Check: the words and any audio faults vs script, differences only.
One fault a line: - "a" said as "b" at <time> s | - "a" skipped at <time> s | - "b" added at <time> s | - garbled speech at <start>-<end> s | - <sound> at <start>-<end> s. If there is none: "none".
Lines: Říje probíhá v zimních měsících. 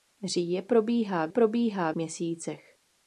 - "zimních" said as "probíhá" at 1.3 s